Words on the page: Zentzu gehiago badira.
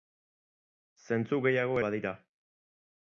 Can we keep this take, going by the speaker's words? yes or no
yes